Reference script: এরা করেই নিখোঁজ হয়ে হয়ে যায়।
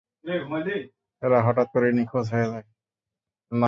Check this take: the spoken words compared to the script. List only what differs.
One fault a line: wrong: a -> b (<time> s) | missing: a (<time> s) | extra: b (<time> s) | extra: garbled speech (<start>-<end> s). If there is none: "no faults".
extra: হঠাৎ (1.5 s)
missing: হয়ে (2.5 s)